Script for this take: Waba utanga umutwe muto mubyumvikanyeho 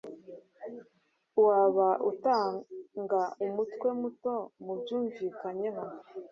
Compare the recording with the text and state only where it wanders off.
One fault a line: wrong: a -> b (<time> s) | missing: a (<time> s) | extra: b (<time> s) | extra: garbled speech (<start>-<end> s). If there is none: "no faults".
no faults